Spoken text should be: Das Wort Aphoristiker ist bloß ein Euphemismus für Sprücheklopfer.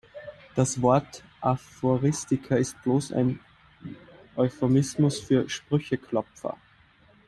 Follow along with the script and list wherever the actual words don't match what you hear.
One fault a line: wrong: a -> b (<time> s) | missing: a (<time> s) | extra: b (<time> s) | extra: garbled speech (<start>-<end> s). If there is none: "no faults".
no faults